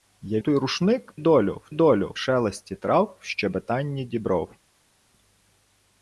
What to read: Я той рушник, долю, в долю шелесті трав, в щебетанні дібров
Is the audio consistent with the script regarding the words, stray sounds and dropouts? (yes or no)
yes